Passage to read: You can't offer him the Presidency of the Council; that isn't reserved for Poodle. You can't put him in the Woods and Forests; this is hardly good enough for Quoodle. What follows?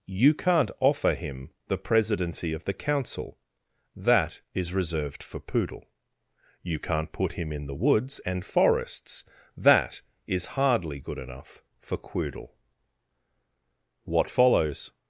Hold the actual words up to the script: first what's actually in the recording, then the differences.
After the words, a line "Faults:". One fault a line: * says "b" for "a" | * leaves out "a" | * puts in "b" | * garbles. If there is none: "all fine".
You can't offer him the Presidency of the Council; that is reserved for Poodle. You can't put him in the Woods and Forests; that is hardly good enough for Quoodle. What follows?
Faults:
* says "is" for "isn't"
* says "that" for "this"